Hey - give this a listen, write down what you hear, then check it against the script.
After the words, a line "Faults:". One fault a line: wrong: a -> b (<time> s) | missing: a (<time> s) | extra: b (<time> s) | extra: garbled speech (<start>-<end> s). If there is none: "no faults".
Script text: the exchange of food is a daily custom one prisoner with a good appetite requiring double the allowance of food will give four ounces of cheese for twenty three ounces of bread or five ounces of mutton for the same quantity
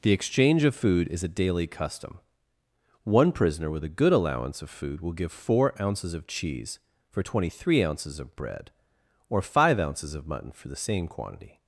the exchange of food is a daily custom one prisoner with a good allowance of food will give four ounces of cheese for twenty three ounces of bread or five ounces of mutton for the same quantity
Faults:
missing: appetite requiring double the (4.1 s)